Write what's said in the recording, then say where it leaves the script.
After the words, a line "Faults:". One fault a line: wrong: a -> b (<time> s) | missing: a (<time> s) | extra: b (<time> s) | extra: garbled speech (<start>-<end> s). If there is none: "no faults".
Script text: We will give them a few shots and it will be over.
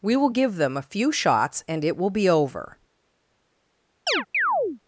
We will give them a few shots and it will be over.
Faults:
no faults